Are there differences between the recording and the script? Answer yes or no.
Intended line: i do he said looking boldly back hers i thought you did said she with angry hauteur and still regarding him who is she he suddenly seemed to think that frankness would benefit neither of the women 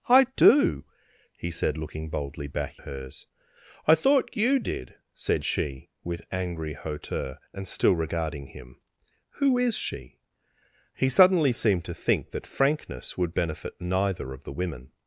no